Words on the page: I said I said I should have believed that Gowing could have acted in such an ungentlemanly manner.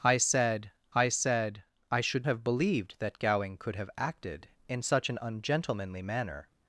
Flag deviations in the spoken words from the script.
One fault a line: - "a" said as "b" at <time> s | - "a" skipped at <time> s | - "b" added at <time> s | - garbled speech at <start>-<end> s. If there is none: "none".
none